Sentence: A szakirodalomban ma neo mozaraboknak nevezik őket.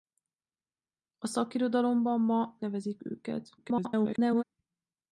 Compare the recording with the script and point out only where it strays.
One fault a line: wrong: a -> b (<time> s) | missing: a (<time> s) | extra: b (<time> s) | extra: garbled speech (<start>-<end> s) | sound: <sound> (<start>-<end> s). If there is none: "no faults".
missing: neo mozaraboknak (2.6 s)
extra: garbled speech (3.6-4.4 s)